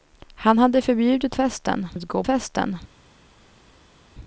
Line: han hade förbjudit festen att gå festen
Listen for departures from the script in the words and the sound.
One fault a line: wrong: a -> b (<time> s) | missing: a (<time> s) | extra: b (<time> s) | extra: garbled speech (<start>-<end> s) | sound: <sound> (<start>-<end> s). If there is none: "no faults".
no faults